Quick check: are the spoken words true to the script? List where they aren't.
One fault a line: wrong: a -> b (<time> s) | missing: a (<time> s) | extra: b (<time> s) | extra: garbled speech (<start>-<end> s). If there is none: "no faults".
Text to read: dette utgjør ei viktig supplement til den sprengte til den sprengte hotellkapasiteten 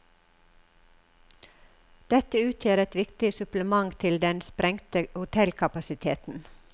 wrong: ei -> et (2.8 s)
missing: til den sprengte (5.0 s)